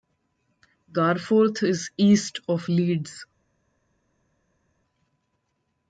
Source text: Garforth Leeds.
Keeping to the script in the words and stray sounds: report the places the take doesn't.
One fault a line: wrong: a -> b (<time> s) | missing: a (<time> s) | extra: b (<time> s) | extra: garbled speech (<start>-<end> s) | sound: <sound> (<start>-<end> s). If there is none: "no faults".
extra: is east of (1.6 s)